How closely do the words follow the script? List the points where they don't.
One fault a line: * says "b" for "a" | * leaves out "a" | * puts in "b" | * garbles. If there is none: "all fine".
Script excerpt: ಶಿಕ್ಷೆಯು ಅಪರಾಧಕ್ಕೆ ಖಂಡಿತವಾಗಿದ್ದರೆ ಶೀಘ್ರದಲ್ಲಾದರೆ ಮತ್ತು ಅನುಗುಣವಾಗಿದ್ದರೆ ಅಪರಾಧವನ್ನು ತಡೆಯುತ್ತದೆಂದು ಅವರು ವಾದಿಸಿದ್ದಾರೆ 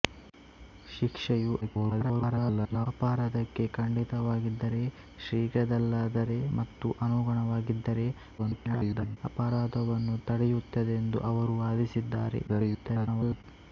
* garbles
* garbles
* garbles